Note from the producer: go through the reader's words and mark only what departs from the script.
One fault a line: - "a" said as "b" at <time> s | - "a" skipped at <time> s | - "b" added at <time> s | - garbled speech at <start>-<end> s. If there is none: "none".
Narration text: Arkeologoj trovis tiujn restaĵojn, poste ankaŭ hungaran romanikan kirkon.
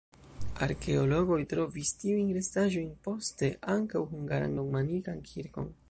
none